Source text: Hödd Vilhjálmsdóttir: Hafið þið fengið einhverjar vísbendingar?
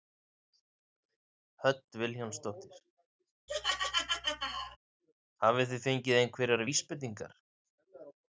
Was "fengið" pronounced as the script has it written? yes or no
yes